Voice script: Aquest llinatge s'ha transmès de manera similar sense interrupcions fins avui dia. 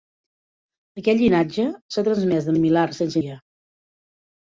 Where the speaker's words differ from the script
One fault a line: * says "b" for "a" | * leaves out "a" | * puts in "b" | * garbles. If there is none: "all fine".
* leaves out "manera"
* leaves out "interrupcions fins avui"